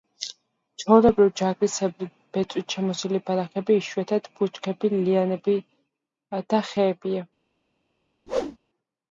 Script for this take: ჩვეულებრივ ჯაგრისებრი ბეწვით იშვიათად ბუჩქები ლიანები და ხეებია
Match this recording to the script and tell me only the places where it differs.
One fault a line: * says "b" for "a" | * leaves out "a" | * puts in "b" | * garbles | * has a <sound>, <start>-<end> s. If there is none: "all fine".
* puts in "შემოსილი ბალახები"
* has a whoosh, 8.3-8.6 s